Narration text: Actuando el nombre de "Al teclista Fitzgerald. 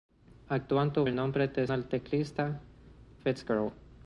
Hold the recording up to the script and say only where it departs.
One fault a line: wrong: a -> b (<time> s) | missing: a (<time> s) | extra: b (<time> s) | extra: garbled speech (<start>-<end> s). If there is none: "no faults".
no faults